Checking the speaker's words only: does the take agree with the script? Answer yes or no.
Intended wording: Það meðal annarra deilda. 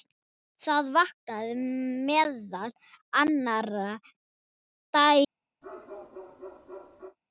no